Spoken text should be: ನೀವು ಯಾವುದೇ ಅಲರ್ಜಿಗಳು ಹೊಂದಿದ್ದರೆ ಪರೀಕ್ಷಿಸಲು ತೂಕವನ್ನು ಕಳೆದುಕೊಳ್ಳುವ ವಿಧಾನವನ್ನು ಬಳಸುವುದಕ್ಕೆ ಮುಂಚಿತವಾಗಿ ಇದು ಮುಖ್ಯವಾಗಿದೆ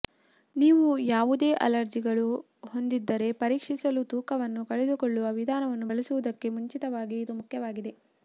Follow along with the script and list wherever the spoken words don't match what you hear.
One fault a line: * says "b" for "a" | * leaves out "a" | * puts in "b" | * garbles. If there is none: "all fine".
all fine